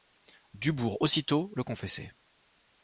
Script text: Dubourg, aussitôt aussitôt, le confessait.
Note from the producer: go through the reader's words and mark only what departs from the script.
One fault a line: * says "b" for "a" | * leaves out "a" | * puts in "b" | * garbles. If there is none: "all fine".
* leaves out "aussitôt"